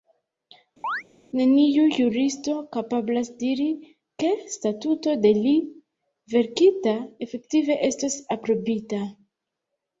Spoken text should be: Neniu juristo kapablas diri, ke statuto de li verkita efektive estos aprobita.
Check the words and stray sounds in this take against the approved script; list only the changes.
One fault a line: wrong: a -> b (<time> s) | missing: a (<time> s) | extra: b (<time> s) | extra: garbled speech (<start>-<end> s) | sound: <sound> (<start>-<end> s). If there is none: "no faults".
sound: chirp (0.8-1.0 s)